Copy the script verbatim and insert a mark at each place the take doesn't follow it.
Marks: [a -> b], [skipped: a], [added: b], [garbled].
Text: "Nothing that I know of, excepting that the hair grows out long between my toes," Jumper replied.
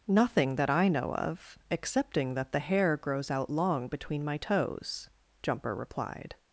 "Nothing that I know of, excepting that the hair grows out long between my toes," Jumper replied.